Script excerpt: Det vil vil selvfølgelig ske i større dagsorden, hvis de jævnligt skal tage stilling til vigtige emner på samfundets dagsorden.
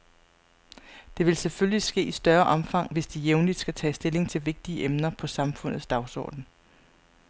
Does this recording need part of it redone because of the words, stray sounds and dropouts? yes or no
yes